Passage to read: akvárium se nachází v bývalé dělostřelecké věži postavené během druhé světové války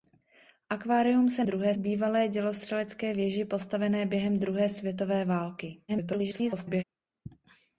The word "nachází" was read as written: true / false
false